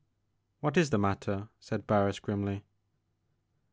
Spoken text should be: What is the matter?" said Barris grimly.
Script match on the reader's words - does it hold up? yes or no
yes